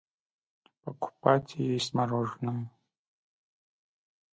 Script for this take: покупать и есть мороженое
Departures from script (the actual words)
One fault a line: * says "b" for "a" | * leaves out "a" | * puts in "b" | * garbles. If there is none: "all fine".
all fine